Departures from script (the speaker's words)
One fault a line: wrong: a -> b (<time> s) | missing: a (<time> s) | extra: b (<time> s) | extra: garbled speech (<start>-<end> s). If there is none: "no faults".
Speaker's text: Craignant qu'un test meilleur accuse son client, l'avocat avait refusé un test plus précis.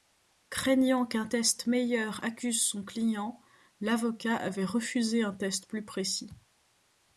no faults